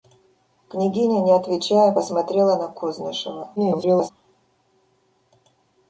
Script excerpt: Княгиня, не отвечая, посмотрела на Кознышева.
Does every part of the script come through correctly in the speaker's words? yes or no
no